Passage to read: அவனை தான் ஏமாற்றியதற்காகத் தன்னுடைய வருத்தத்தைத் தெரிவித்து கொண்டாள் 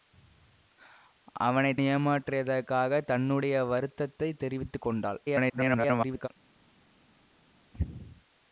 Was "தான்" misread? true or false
true